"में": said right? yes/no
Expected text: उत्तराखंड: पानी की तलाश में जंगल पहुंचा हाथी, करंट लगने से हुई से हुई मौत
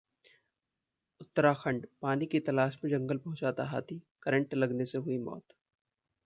yes